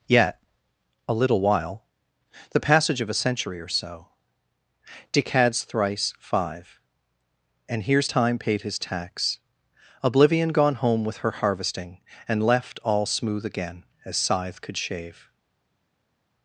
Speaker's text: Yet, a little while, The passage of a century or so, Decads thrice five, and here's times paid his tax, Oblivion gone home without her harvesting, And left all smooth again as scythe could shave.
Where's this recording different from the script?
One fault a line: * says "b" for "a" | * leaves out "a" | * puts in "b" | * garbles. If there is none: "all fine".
* says "time" for "times"
* says "with" for "without"